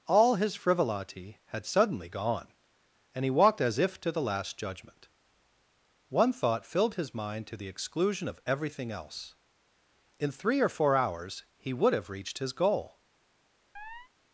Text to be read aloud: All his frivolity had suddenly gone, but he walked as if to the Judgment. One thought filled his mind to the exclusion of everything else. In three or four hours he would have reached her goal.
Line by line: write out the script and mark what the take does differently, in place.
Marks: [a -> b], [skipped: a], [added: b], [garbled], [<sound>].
All his frivolity had suddenly gone, [but -> and] he walked as if to the [added: Last] Judgment. One thought filled his mind to the exclusion of everything else. In three or four hours he would have reached [her -> his] goal. [chirp]